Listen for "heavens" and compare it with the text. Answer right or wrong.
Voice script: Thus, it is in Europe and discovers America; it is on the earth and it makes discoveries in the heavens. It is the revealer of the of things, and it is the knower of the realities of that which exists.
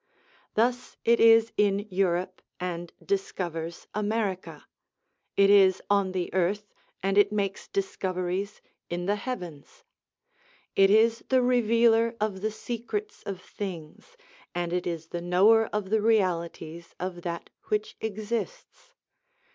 right